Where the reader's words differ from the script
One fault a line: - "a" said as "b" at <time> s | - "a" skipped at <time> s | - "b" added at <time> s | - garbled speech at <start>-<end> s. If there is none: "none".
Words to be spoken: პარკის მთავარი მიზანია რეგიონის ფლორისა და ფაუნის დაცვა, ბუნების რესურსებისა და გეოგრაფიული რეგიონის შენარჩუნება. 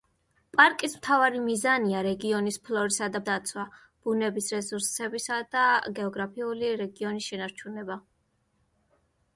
- "ფაუნის" skipped at 3.2 s